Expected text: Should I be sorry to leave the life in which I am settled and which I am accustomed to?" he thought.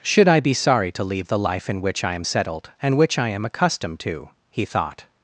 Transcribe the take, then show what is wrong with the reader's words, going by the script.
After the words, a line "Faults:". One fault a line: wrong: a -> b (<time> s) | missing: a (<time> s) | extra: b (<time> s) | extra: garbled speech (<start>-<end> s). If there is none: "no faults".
Should I be sorry to leave the life in which I am settled and which I am accustomed to?" he thought.
Faults:
no faults